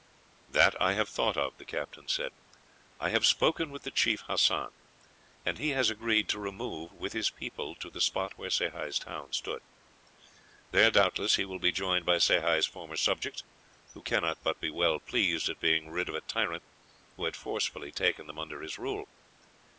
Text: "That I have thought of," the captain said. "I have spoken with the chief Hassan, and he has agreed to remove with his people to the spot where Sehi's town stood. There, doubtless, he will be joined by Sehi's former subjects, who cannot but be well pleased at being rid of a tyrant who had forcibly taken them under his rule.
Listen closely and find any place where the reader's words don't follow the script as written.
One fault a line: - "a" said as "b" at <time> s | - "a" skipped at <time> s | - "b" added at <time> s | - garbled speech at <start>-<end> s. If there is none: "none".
none